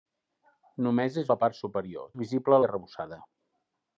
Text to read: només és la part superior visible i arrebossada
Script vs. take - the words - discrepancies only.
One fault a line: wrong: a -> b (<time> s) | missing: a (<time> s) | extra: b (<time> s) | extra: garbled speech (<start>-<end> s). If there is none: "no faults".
no faults